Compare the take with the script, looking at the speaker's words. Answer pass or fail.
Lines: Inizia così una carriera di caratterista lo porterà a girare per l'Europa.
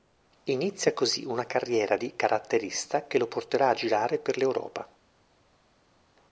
fail